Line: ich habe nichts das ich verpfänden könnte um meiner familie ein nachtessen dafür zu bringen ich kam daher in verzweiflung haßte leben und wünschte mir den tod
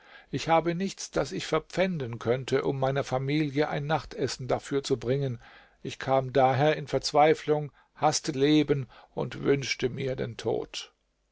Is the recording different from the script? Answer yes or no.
no